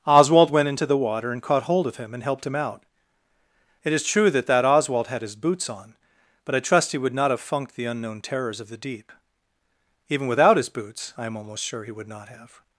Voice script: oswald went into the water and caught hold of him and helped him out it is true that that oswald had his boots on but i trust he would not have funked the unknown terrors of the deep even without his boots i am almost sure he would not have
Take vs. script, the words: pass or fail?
pass